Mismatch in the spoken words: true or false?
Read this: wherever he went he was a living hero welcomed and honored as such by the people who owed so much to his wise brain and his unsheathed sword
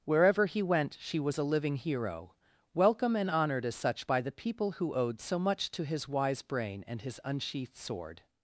true